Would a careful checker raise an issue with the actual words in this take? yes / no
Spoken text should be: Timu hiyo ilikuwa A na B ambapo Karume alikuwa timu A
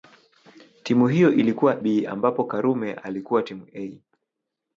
yes